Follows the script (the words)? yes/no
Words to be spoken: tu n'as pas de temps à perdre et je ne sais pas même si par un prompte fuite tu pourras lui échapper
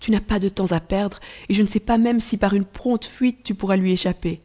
no